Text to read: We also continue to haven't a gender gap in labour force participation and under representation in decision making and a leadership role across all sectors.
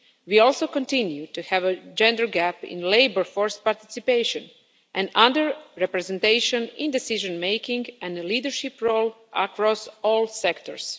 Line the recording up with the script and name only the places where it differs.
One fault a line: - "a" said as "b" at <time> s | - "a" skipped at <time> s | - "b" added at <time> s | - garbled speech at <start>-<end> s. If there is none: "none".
- "haven't" said as "have" at 1.4 s